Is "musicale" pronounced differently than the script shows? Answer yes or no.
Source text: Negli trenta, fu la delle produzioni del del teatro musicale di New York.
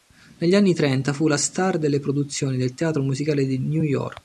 no